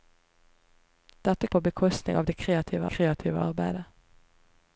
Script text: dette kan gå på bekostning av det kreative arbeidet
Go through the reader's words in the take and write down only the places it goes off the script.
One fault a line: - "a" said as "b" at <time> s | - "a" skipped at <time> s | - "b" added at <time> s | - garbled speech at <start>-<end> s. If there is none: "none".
- "kan gå" skipped at 1.5 s
- "kreative" added at 2.8 s